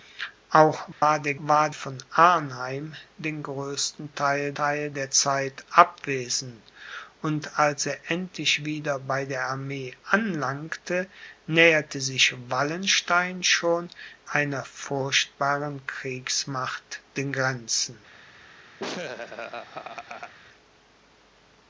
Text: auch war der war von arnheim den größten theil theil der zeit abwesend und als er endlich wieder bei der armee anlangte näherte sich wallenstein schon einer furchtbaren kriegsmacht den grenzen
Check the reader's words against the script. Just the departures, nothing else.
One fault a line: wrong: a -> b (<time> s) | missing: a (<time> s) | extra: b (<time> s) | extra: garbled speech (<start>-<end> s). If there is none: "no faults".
no faults